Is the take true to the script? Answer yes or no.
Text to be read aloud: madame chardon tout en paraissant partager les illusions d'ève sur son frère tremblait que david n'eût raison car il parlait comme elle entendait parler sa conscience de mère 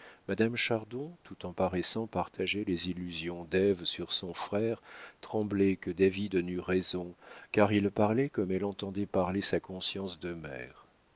yes